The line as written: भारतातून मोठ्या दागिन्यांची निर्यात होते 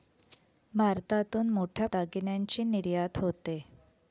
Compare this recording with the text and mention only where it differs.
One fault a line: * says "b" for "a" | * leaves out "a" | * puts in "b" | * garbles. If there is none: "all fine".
all fine